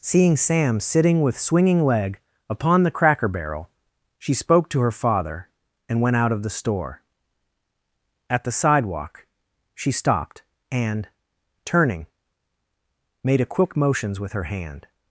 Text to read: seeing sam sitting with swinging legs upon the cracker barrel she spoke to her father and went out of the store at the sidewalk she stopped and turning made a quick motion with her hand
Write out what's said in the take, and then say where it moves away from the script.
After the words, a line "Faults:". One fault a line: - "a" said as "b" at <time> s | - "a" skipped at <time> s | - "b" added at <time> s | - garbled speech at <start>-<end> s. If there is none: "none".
seeing sam sitting with swinging leg upon the cracker barrel she spoke to her father and went out of the store at the sidewalk she stopped and turning made a quick motions with her hand
Faults:
- "legs" said as "leg" at 1.9 s
- "motion" said as "motions" at 13.8 s